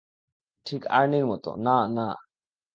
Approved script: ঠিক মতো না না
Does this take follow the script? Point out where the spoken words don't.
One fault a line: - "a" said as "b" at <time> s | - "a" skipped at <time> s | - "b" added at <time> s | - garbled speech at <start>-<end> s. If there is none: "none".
- "আর্নির" added at 0.9 s